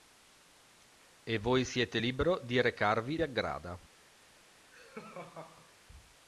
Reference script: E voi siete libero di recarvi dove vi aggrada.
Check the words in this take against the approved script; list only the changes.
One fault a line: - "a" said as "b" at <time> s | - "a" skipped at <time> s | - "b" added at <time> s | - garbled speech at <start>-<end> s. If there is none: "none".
- "dove vi" skipped at 3.2 s